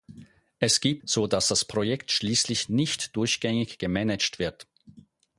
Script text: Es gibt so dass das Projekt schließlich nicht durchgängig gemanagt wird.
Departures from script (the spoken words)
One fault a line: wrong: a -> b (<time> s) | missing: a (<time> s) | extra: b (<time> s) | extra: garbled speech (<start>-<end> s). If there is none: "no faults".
no faults